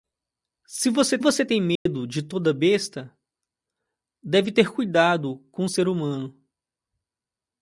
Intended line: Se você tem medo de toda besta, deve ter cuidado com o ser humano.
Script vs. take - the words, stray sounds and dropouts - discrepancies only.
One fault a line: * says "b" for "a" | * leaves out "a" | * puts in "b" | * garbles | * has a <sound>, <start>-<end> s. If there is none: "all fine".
* puts in "você"
* has a dropout, 1.8-1.9 s